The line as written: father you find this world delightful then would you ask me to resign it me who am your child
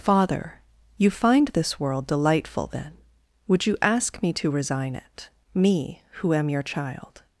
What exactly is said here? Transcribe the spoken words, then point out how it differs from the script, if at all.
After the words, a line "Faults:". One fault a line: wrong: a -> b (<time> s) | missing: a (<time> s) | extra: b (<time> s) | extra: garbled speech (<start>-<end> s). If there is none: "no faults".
father you find this world delightful then would you ask me to resign it me who am your child
Faults:
no faults